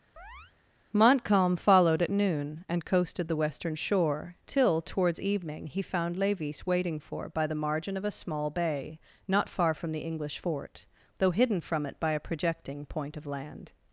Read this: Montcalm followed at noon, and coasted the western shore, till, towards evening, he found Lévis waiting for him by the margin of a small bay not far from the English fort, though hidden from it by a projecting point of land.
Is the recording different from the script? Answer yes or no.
yes